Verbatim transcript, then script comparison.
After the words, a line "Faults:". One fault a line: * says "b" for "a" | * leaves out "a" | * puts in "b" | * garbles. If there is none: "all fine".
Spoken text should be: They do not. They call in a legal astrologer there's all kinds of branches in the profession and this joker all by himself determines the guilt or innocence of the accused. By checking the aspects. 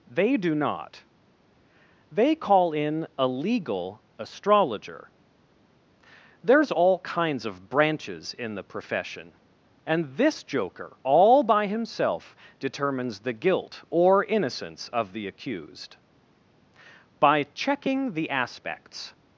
They do not. They call in a legal astrologer there's all kinds of branches in the profession and this joker all by himself determines the guilt or innocence of the accused. By checking the aspects.
Faults:
all fine